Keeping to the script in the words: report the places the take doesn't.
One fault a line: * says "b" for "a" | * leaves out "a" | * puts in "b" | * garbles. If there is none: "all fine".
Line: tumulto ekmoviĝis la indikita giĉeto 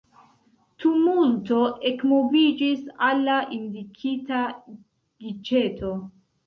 * puts in "al"